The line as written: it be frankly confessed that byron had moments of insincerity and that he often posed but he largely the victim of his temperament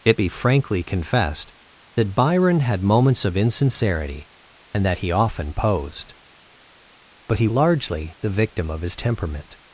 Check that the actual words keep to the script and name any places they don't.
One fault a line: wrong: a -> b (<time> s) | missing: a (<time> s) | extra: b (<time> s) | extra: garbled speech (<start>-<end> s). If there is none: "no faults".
no faults